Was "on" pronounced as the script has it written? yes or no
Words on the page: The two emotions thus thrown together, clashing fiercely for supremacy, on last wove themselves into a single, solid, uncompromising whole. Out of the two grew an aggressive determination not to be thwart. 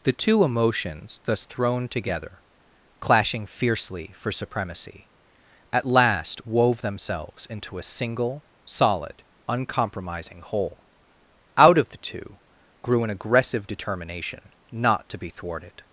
no